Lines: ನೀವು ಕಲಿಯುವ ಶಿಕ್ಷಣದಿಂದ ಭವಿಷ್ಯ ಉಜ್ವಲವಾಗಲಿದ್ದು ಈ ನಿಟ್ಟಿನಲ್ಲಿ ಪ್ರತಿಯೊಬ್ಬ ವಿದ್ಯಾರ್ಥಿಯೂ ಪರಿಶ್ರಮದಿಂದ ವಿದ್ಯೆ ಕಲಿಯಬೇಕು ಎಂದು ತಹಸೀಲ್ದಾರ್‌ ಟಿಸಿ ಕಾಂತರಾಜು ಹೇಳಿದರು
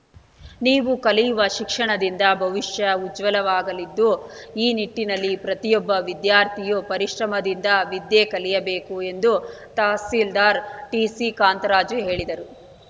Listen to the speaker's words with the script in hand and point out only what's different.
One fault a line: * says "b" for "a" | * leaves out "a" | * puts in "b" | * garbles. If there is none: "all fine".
all fine